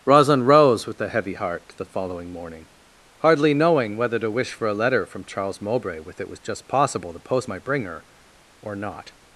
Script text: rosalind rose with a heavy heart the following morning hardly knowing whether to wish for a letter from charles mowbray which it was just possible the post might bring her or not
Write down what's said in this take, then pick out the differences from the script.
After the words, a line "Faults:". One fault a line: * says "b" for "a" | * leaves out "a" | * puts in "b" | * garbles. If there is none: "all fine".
rosalind rose with a heavy heart the following morning hardly knowing whether to wish for a letter from charles mowbray with it was just possible the post might bring her or not
Faults:
* says "with" for "which"